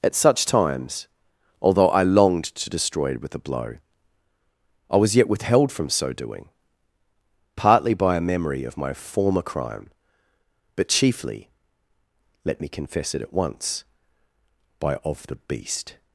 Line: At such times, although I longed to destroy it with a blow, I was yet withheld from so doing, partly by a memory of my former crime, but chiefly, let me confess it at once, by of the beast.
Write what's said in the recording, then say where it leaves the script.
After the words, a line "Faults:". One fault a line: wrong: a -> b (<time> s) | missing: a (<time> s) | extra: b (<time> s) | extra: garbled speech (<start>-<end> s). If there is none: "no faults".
At such times, although I longed to destroy it with a blow, I was yet withheld from so doing, partly by a memory of my former crime, but chiefly, let me confess it at once, by of the beast.
Faults:
no faults